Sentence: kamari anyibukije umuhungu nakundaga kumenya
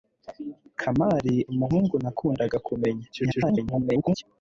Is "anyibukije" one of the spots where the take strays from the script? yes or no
yes